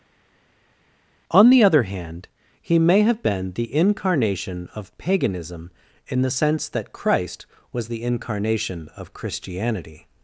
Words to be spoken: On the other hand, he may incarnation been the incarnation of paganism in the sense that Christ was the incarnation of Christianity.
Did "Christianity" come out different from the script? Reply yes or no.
no